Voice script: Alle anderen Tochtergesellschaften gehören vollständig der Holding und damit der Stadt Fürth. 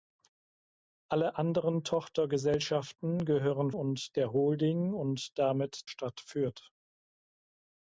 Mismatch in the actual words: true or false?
true